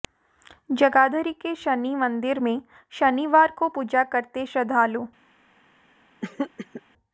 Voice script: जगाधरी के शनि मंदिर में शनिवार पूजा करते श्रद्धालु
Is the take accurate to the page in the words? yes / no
no